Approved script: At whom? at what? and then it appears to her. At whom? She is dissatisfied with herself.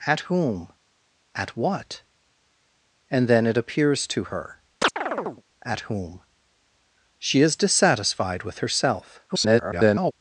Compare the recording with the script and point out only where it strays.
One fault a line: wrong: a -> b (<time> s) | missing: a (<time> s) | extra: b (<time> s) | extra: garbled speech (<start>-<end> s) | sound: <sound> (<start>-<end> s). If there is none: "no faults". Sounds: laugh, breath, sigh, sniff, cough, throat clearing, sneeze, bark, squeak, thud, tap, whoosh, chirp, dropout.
sound: chirp (4.8-5.4 s)
extra: garbled speech (9.3-10.1 s)